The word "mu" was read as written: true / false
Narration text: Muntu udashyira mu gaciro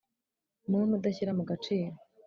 true